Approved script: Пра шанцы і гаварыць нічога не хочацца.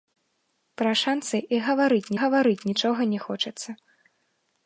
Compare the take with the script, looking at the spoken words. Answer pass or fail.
fail